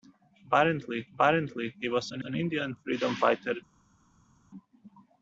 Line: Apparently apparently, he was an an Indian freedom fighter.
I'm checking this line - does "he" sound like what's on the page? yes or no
yes